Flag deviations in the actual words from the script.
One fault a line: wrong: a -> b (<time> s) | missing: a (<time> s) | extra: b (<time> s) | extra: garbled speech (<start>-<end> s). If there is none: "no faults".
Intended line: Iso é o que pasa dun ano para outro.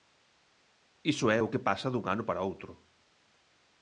no faults